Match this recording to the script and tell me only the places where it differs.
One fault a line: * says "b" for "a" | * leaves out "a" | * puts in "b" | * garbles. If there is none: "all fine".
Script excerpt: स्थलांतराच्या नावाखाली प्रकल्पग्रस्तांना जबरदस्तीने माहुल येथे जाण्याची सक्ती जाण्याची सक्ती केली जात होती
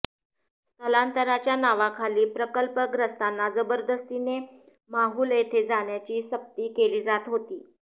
* leaves out "जाण्याची सक्ती"